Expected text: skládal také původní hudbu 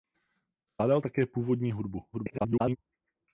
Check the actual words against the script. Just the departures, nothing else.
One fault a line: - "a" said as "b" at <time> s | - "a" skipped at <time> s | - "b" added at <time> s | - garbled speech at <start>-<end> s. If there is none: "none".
- garbled speech at 2.1-2.8 s